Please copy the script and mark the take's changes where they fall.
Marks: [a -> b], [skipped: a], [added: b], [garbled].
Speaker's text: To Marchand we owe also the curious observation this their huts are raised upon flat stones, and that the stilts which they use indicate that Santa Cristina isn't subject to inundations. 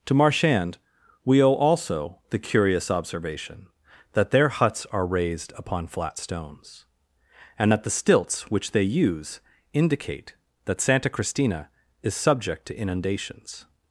To Marchand we owe also the curious observation [this -> that] their huts are raised upon flat stones, and that the stilts which they use indicate that Santa Cristina [isn't -> is] subject to inundations.